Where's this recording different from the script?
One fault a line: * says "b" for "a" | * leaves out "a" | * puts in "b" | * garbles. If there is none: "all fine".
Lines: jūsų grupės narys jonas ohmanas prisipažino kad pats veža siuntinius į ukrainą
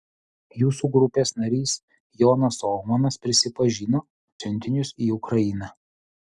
* leaves out "kad pats veža"